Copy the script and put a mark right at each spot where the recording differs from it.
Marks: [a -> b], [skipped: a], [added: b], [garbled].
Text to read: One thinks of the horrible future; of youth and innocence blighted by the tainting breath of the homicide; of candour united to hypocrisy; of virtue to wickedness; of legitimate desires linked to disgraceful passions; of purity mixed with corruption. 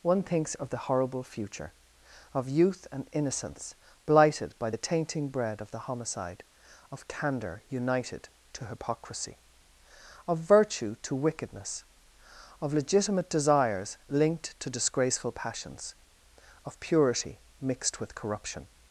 One thinks of the horrible future; of youth and innocence blighted by the tainting [breath -> bread] of the homicide; of candour united to hypocrisy; of virtue to wickedness; of legitimate desires linked to disgraceful passions; of purity mixed with corruption.